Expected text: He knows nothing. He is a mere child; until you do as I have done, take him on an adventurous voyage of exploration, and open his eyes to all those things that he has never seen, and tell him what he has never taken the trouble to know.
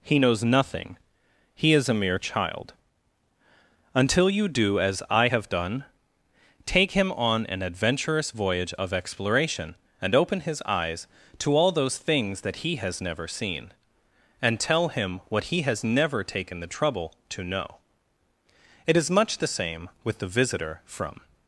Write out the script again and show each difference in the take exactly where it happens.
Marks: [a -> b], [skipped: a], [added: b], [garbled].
He knows nothing. He is a mere child; until you do as I have done, take him on an adventurous voyage of exploration, and open his eyes to all those things that he has never seen, and tell him what he has never taken the trouble to know. [added: It is much the same with the visitor from]